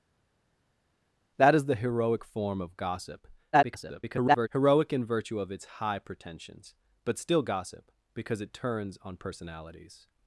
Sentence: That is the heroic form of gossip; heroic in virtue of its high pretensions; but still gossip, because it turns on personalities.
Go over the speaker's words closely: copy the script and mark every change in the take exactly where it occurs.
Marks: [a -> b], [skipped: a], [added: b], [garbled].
That is the heroic form of gossip; [garbled] heroic in virtue of its high pretensions; but still gossip, because it turns on personalities.